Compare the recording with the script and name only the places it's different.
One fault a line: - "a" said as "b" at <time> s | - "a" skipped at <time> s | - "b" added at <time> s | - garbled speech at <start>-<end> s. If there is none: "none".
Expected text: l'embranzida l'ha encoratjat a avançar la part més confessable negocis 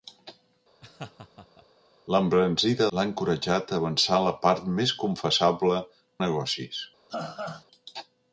none